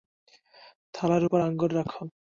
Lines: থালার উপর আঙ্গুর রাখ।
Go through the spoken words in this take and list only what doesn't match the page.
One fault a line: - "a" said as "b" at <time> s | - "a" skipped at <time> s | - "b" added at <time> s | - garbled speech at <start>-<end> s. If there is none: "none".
none